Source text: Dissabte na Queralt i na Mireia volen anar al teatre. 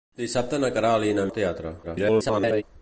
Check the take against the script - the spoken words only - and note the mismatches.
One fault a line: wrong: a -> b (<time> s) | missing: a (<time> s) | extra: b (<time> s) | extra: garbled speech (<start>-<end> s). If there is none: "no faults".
missing: Mireia volen anar (1.3 s)
extra: garbled speech (1.8-2.6 s)